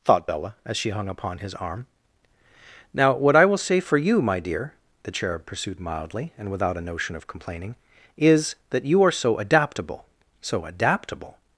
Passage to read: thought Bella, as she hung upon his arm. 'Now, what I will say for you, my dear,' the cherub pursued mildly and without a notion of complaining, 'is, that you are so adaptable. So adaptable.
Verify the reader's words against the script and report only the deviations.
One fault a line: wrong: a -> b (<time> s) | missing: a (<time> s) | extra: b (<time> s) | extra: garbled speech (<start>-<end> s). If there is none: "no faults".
no faults